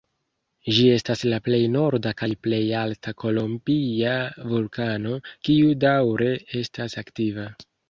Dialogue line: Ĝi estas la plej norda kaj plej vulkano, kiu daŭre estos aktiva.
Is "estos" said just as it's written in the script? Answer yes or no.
no